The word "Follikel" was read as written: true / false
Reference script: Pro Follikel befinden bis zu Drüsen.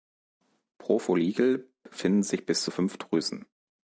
true